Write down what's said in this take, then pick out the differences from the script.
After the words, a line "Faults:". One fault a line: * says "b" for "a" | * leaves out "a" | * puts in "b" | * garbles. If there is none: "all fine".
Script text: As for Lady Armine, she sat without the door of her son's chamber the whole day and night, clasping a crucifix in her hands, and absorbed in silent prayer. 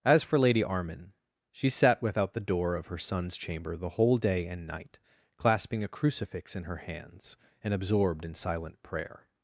As for Lady Armine, she sat without the door of her son's chamber the whole day and night, clasping a crucifix in her hands, and absorbed in silent prayer.
Faults:
all fine